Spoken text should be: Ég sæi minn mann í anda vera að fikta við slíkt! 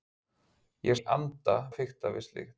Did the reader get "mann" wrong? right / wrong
wrong